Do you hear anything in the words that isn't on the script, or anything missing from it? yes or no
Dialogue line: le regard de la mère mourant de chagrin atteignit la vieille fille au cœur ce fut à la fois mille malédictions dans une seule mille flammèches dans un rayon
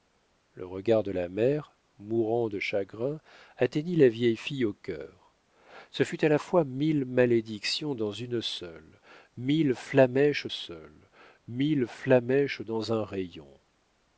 yes